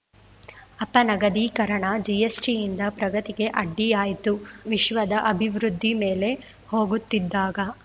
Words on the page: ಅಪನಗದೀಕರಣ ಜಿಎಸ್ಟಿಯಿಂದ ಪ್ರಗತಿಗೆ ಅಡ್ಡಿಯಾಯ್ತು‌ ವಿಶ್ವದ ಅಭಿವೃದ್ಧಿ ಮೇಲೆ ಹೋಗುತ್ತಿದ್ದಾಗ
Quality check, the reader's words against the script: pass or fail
pass